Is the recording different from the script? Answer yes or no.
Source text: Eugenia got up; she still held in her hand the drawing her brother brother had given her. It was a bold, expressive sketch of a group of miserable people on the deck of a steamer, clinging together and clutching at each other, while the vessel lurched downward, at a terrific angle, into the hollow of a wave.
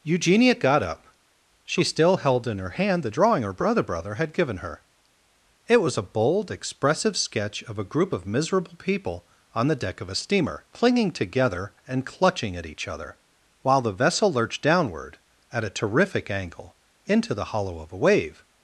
no